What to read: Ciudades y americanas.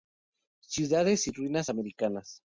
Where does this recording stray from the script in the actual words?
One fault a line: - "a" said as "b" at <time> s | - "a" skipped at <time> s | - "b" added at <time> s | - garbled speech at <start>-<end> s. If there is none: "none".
- "ruinas" added at 1.3 s